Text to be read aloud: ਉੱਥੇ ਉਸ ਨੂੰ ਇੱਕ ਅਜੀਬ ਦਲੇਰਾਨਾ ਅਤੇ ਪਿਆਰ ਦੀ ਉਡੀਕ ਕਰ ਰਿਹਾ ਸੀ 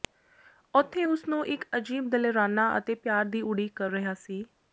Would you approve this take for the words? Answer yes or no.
yes